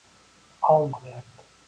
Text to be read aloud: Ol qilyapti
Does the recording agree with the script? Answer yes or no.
yes